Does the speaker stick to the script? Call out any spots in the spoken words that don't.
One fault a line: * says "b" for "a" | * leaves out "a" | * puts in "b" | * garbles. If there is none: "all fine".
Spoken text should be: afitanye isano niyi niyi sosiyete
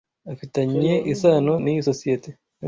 * leaves out "niyi"